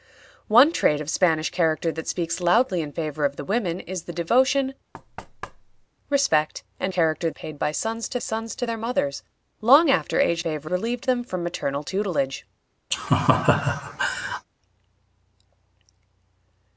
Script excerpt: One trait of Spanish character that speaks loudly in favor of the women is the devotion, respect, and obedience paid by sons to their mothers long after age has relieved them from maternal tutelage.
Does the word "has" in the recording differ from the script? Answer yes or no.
yes